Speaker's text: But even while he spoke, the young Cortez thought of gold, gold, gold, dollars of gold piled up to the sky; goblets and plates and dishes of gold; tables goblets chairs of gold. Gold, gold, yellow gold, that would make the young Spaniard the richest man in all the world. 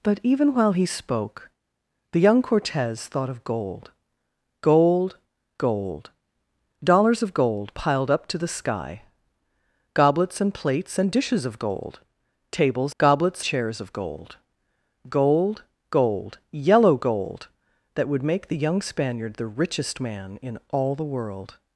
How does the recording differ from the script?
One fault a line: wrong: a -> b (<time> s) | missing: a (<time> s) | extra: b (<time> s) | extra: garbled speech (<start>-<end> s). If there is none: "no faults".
no faults